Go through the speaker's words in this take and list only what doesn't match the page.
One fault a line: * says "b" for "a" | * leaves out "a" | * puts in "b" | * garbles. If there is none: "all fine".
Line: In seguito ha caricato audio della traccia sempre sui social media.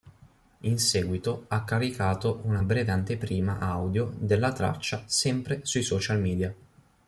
* puts in "una breve anteprima"